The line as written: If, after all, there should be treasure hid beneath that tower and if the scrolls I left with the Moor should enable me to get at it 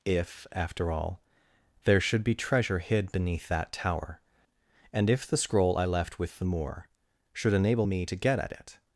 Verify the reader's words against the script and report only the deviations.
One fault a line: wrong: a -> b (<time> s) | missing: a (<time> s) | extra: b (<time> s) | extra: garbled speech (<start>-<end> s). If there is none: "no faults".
wrong: scrolls -> scroll (5.4 s)